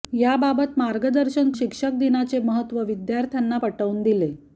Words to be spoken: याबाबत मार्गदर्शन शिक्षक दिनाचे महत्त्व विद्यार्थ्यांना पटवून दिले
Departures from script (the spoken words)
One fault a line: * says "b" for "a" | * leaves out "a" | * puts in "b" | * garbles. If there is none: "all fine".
all fine